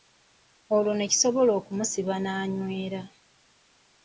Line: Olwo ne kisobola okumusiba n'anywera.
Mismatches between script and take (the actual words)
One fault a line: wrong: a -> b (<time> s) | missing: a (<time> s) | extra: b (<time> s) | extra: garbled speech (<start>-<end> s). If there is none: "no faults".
no faults